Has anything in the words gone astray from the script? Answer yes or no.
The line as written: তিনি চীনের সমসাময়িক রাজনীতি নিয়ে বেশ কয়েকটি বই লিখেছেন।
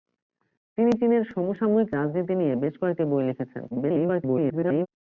yes